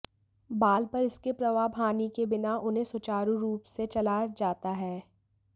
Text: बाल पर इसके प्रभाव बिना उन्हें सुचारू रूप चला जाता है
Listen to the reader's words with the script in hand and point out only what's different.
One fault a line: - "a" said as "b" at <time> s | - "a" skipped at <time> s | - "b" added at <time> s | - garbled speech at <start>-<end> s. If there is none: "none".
- "हानि के" added at 1.8 s
- "से" added at 3.7 s